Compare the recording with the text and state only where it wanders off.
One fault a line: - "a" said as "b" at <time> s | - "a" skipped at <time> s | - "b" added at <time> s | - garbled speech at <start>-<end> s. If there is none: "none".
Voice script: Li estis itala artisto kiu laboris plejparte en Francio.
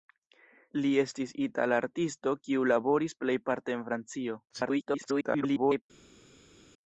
- garbled speech at 4.5-5.8 s